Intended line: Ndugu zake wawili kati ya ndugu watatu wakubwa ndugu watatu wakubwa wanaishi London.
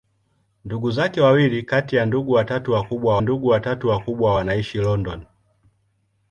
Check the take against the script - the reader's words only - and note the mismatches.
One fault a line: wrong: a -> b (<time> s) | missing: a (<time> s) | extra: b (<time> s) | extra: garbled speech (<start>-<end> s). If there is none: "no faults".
no faults